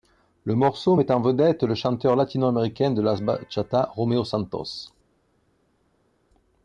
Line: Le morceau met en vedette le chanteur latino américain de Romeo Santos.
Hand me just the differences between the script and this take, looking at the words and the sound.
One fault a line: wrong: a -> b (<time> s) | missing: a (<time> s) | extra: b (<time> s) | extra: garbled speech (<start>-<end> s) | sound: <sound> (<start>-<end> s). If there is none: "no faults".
extra: la bachata (3.0 s)